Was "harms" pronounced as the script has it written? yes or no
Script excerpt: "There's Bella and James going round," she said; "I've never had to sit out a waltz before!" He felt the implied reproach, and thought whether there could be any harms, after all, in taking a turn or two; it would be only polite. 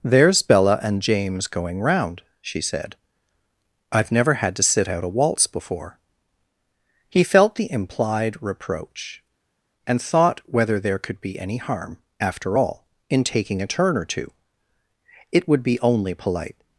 no